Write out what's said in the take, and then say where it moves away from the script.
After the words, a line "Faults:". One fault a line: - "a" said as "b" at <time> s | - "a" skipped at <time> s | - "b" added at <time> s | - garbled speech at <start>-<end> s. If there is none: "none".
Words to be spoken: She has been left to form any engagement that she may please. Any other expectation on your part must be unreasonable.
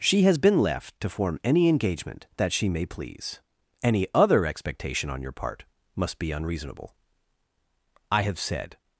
She has been left to form any engagement that she may please. Any other expectation on your part must be unreasonable. I have said
Faults:
- "I have said" added at 8.1 s